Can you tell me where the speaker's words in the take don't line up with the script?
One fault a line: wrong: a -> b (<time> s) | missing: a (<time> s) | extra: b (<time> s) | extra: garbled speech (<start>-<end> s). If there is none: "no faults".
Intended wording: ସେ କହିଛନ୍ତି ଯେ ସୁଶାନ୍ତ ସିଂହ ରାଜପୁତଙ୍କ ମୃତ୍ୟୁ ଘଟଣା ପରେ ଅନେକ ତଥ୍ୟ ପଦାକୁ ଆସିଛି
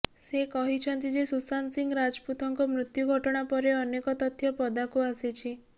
no faults